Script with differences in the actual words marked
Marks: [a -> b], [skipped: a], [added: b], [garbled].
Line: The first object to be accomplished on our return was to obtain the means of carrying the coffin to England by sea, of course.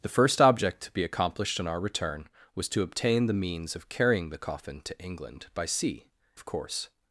The first object to be accomplished on our return was to obtain the means of carrying the coffin to England by sea, of course.